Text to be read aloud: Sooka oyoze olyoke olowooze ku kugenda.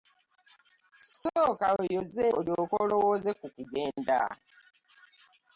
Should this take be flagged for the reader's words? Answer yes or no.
no